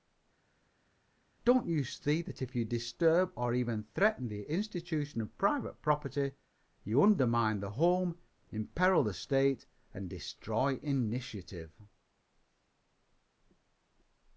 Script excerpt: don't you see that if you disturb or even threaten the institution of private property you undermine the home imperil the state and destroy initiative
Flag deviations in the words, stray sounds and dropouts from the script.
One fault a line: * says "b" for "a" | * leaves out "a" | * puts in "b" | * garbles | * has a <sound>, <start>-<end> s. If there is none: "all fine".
all fine